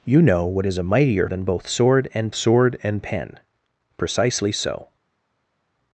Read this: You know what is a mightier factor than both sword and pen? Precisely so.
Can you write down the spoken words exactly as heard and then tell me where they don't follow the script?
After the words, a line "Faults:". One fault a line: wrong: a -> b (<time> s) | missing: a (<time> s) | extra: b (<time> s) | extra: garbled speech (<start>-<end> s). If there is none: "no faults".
You know what is a mightier than both sword and sword and pen? Precisely so.
Faults:
missing: factor (1.3 s)
extra: sword and (2.3 s)